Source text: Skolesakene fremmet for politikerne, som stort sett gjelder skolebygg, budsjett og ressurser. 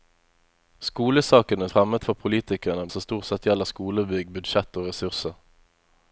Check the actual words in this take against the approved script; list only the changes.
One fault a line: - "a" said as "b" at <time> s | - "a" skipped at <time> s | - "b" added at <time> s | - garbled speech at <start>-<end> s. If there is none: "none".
none